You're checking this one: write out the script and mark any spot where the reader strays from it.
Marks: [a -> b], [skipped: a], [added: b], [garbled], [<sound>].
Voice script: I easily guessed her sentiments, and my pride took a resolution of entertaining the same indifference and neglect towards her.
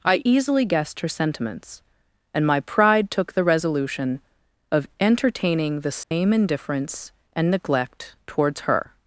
I easily guessed her sentiments, and my pride took [a -> the] resolution of entertaining the same [dropout] indifference and neglect towards her.